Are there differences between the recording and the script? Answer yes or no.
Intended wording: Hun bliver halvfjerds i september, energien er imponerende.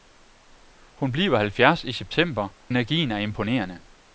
no